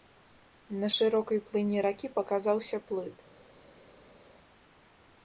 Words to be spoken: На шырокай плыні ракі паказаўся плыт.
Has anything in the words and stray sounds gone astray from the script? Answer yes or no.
no